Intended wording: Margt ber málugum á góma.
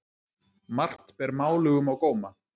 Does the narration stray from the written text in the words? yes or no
no